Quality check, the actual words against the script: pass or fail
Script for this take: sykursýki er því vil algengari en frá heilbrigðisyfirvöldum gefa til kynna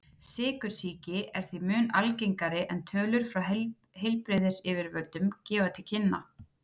fail